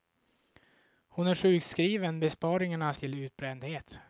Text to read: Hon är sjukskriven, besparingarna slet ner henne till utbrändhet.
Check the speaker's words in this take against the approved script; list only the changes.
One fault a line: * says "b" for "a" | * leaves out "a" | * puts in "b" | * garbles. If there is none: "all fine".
* leaves out "slet ner henne"